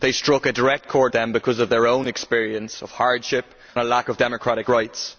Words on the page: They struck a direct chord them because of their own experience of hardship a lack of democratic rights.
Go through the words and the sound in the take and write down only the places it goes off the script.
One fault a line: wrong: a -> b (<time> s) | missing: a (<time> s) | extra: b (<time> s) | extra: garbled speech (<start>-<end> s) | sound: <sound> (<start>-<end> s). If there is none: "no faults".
no faults